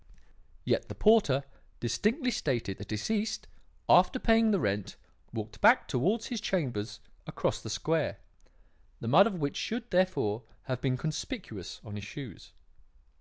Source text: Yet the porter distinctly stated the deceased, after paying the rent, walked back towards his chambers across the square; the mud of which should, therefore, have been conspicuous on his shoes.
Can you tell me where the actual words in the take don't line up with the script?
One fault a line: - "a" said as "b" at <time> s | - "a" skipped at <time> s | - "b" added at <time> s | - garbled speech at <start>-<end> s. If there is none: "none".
none